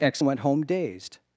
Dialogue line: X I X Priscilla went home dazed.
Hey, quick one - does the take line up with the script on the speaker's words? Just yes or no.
no